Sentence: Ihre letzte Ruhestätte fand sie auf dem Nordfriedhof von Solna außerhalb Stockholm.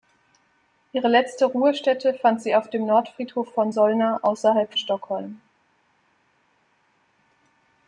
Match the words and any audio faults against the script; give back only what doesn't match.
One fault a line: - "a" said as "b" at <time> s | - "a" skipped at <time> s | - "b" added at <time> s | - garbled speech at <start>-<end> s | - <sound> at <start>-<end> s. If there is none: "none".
none